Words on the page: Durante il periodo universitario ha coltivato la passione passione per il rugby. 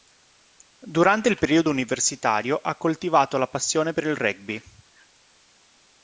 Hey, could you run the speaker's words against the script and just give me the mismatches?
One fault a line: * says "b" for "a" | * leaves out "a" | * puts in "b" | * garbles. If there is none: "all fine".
* leaves out "passione"